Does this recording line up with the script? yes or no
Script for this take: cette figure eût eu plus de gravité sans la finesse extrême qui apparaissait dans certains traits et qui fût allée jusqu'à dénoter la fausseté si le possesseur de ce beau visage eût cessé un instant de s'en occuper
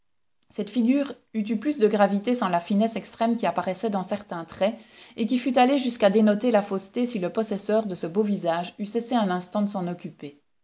yes